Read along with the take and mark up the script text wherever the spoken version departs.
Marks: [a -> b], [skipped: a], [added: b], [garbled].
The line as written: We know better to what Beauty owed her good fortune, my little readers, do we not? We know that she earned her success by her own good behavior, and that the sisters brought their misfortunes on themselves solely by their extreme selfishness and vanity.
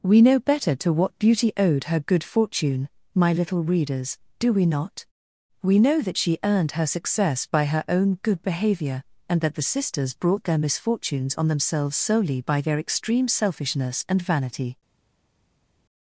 We know better to what Beauty owed her good fortune, my little readers, do we not? We know that she earned her success by her own good behavior, and that the sisters brought their misfortunes on themselves solely by their extreme selfishness and vanity.